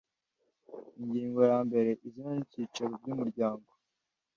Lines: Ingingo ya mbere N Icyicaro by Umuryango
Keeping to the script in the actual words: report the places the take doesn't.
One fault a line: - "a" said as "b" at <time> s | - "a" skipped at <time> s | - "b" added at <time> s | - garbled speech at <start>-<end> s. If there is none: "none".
- "Izina" added at 2.1 s